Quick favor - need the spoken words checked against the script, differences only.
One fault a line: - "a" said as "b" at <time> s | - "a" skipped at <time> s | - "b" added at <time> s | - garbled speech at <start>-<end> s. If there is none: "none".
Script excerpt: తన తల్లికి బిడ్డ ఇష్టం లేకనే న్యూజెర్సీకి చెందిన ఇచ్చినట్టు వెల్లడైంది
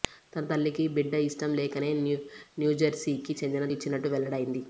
none